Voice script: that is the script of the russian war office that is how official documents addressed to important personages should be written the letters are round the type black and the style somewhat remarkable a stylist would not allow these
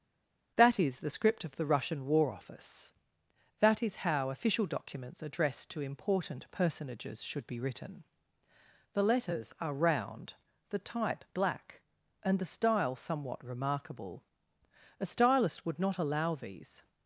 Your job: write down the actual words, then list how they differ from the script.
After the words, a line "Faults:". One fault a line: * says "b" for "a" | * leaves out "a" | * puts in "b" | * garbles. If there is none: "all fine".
that is the script of the russian war office that is how official documents addressed to important personages should be written the letters are round the type black and the style somewhat remarkable a stylist would not allow these
Faults:
all fine